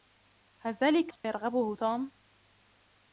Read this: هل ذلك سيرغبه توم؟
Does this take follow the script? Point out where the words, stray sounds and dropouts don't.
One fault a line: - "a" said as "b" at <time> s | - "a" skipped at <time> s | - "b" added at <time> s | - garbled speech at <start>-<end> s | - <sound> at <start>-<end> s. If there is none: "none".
- dropout at 1.2-1.2 s